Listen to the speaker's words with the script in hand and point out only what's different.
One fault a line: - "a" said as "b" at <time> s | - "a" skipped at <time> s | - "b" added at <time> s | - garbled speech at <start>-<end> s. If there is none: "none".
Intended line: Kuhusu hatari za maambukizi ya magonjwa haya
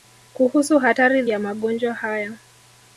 - "za maambukizi" skipped at 1.2 s